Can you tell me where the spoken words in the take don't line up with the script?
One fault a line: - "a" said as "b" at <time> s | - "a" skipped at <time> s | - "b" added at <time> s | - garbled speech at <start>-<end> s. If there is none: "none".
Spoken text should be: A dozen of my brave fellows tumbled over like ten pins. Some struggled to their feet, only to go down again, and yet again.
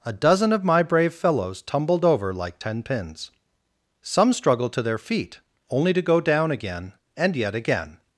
none